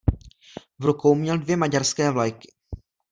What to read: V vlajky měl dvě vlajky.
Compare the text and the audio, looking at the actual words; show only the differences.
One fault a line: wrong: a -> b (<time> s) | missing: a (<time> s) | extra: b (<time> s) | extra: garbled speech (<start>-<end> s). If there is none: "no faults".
wrong: vlajky -> rukou (0.8 s)
extra: maďarské (1.6 s)